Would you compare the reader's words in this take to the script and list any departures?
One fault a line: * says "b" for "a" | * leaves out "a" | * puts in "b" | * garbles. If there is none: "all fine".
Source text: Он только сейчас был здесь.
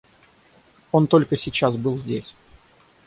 all fine